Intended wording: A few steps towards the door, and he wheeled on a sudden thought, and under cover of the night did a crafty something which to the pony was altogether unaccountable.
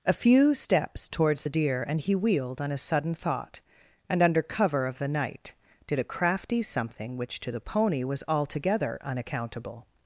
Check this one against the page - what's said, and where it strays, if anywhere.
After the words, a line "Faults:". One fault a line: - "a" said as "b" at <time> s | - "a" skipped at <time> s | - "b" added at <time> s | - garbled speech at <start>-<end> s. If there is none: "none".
A few steps towards the deer, and he wheeled on a sudden thought, and under cover of the night did a crafty something which to the pony was altogether unaccountable.
Faults:
- "door" said as "deer" at 1.5 s